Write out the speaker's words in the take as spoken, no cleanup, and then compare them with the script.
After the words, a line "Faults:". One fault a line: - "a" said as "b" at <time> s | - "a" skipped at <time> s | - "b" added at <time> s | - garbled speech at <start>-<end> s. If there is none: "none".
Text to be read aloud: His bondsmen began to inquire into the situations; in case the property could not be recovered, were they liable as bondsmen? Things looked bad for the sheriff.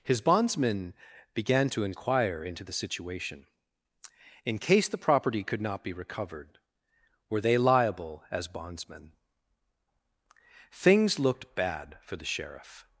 His bondsmen began to inquire into the situation; in case the property could not be recovered, were they liable as bondsmen? Things looked bad for the sheriff.
Faults:
- "situations" said as "situation" at 2.7 s